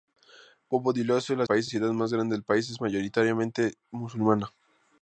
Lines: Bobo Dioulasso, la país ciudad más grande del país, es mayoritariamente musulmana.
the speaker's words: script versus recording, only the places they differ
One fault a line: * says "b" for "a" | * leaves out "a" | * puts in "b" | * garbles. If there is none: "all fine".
all fine